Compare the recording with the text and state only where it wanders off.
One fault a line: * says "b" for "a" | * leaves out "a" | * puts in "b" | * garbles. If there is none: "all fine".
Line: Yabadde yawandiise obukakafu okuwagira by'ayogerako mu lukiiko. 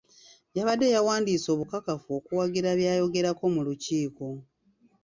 all fine